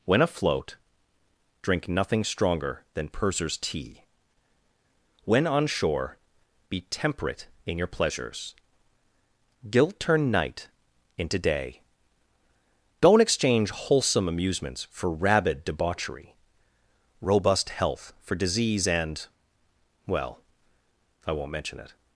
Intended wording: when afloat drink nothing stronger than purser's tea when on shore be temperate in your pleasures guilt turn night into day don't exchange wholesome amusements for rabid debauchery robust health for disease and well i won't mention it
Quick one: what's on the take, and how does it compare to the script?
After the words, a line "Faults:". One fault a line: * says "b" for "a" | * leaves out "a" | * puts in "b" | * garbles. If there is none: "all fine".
when afloat drink nothing stronger than purser's tea when on shore be temperate in your pleasures guilt turn night into day don't exchange wholesome amusements for rabid debauchery robust health for disease and well i won't mention it
Faults:
all fine